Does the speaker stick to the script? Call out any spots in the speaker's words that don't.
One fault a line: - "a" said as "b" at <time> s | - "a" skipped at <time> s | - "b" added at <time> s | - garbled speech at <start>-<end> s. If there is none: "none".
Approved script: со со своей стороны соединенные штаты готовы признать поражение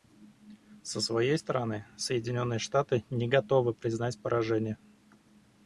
- "со" skipped at 1.0 s
- "не" added at 3.1 s